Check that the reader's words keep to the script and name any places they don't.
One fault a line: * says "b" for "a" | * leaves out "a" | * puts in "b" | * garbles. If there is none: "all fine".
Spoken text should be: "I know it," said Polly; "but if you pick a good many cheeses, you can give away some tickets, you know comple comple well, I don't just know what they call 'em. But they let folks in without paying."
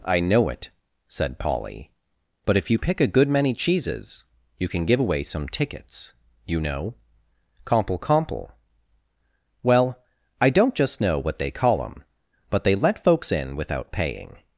all fine